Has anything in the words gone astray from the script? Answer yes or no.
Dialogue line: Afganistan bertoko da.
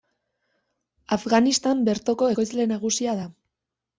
yes